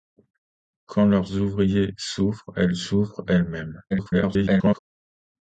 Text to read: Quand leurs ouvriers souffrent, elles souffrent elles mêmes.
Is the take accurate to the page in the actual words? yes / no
no